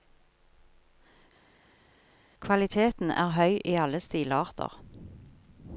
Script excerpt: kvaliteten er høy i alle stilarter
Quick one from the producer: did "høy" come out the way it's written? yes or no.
yes